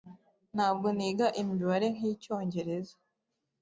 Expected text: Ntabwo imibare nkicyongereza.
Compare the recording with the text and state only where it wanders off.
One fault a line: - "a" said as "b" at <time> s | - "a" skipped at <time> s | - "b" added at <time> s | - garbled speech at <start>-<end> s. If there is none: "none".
- "niga" added at 1.0 s